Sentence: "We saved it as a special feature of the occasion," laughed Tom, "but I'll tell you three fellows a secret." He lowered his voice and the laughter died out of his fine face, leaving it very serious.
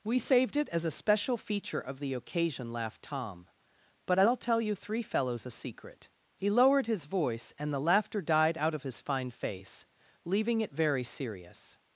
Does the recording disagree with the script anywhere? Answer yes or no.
no